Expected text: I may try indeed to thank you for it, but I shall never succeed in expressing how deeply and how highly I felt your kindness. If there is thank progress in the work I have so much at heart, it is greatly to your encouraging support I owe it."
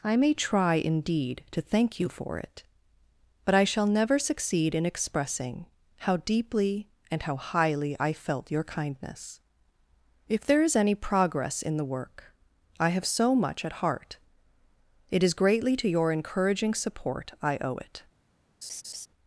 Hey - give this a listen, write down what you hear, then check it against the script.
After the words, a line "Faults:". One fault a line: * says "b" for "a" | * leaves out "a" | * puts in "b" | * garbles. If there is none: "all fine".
I may try indeed to thank you for it, but I shall never succeed in expressing how deeply and how highly I felt your kindness. If there is any progress in the work I have so much at heart, it is greatly to your encouraging support I owe it."
Faults:
* says "any" for "thank"